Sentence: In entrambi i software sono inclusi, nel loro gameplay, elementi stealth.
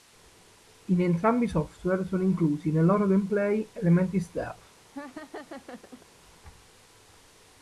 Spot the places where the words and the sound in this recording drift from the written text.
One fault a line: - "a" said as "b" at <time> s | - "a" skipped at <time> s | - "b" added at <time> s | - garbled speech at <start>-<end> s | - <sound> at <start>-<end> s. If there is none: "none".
- laugh at 4.9-6.1 s